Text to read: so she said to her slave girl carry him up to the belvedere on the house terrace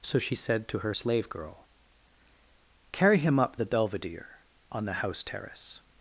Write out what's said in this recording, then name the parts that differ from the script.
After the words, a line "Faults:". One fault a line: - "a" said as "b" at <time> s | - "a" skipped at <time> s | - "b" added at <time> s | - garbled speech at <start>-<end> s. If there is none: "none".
so she said to her slave girl carry him up the belvedere on the house terrace
Faults:
- "to" skipped at 3.6 s